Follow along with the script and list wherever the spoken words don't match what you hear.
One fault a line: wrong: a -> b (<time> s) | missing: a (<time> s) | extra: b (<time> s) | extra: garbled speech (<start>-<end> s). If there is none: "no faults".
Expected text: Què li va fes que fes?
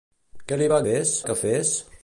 no faults